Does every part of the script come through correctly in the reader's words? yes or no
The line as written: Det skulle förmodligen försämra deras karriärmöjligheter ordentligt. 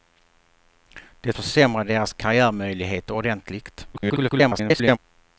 no